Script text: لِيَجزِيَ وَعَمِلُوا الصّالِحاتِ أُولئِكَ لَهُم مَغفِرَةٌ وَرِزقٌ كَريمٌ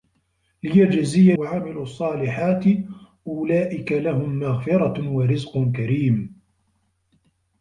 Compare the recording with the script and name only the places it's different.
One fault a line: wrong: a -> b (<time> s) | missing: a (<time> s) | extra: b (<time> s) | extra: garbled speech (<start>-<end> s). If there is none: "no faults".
no faults